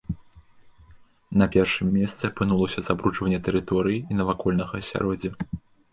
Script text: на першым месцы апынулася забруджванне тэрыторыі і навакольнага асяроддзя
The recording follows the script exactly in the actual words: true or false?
true